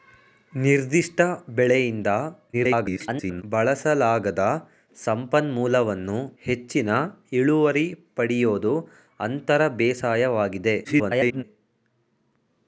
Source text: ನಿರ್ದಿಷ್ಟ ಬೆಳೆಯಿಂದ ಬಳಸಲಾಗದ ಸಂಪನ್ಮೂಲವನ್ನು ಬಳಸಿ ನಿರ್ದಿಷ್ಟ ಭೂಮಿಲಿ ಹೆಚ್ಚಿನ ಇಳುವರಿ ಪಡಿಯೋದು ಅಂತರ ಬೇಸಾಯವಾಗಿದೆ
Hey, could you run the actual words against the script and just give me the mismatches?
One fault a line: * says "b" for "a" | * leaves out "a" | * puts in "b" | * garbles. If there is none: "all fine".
* garbles
* leaves out "ಬಳಸಿ ನಿರ್ದಿಷ್ಟ ಭೂಮಿಲಿ"
* garbles